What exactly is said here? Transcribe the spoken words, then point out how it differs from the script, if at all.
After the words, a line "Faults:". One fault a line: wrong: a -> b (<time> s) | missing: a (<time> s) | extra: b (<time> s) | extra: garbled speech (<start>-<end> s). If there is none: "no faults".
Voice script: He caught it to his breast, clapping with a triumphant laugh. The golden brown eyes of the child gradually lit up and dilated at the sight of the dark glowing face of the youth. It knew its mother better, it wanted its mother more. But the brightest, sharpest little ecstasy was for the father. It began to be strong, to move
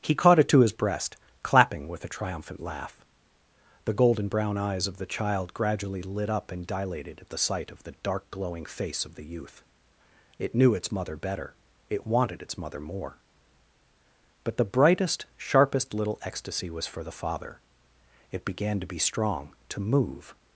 He caught it to his breast, clapping with a triumphant laugh. The golden brown eyes of the child gradually lit up and dilated at the sight of the dark glowing face of the youth. It knew its mother better, it wanted its mother more. But the brightest, sharpest little ecstasy was for the father. It began to be strong, to move
Faults:
no faults